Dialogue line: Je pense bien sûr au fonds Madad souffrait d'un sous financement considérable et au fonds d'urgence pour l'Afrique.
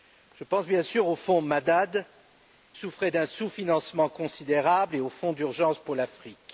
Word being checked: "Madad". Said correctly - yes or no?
yes